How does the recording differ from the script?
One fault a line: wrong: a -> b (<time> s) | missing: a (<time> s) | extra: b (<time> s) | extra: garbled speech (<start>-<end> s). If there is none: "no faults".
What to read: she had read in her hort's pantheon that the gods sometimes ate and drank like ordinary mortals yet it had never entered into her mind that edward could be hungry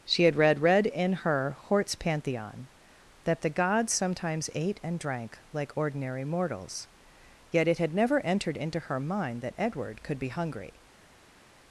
extra: read (0.6 s)